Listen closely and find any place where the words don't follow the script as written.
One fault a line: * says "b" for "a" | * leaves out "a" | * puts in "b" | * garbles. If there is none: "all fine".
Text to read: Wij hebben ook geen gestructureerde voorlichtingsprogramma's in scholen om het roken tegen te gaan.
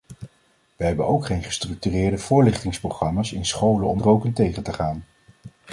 * leaves out "het"